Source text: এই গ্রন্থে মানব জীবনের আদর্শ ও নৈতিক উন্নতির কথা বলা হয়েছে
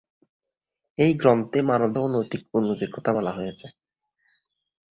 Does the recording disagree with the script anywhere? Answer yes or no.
yes